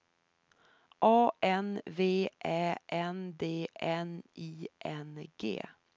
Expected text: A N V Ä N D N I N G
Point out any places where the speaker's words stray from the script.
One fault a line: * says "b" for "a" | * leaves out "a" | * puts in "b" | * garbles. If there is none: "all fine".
all fine